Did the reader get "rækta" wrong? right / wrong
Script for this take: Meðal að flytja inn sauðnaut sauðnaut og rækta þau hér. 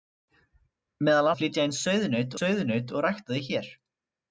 right